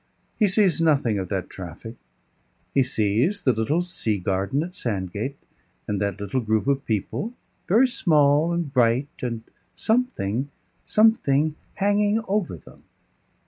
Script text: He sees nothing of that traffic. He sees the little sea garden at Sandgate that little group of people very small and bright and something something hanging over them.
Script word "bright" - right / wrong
right